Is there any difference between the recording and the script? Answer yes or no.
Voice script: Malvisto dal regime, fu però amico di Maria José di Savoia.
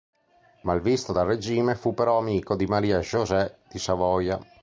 no